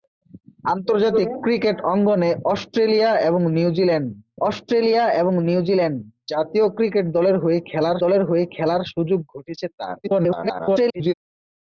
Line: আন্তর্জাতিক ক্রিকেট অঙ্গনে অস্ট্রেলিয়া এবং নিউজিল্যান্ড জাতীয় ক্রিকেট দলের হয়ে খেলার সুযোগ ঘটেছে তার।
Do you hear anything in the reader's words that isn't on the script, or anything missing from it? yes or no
yes